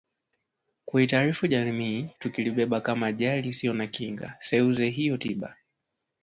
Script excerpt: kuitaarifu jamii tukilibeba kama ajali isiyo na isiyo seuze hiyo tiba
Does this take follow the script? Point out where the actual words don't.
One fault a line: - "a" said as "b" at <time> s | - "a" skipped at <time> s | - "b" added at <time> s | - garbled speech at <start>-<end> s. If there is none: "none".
- "isiyo" said as "kinga" at 3.9 s